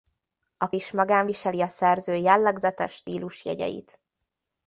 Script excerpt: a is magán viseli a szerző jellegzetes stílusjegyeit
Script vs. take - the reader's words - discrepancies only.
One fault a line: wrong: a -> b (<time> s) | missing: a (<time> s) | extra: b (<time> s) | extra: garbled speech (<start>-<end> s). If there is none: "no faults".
no faults